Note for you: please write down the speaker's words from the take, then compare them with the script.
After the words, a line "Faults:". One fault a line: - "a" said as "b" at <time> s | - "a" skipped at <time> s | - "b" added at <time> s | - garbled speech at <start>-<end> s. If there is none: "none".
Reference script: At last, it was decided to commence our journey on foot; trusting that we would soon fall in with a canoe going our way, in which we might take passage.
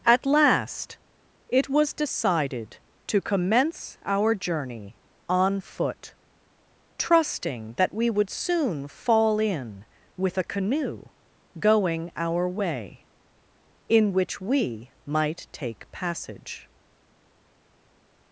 At last, it was decided to commence our journey on foot; trusting that we would soon fall in with a canoe going our way, in which we might take passage.
Faults:
none